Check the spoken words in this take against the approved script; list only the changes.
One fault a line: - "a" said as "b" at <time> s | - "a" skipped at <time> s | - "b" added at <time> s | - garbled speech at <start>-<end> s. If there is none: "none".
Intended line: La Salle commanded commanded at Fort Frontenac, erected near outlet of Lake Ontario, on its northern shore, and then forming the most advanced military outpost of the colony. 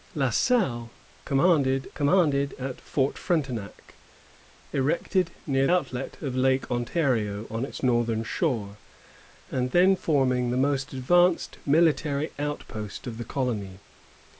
none